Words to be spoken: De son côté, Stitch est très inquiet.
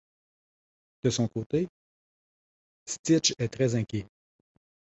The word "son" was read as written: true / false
true